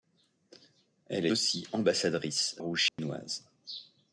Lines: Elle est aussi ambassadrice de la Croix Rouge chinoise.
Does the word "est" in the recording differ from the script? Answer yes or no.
yes